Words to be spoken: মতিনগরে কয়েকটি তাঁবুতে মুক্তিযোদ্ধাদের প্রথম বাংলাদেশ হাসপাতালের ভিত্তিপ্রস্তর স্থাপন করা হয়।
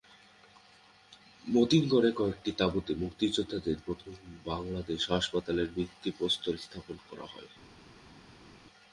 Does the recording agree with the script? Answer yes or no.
yes